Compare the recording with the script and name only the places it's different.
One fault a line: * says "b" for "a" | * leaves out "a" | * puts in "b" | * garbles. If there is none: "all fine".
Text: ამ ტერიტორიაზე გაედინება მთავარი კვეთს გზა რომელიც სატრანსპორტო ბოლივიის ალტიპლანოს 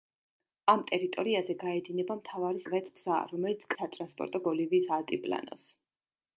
all fine